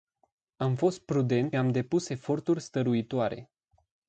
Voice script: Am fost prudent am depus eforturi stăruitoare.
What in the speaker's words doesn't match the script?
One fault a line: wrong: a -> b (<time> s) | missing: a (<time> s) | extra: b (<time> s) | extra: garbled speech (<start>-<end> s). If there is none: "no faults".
no faults